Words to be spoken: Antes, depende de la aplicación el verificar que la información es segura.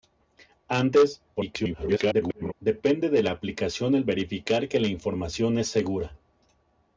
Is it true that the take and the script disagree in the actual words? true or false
true